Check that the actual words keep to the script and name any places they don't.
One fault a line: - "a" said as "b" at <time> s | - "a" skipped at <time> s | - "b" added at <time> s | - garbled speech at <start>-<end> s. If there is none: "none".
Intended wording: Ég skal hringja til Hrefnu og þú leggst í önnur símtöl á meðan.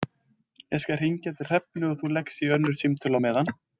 none